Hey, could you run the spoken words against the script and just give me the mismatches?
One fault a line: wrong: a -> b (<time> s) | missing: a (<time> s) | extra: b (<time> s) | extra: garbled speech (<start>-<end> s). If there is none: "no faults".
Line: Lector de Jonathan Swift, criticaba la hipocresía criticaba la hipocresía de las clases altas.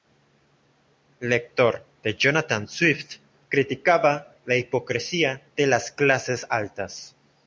missing: criticaba la hipocresía (5.4 s)